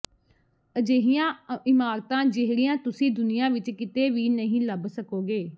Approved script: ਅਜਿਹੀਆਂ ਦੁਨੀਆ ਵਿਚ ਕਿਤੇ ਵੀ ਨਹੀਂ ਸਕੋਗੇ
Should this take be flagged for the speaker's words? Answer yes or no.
yes